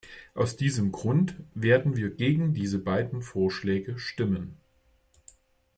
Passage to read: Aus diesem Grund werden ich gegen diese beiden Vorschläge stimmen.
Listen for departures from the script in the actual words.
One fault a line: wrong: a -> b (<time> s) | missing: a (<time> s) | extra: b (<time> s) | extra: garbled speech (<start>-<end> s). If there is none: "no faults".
wrong: ich -> wir (1.9 s)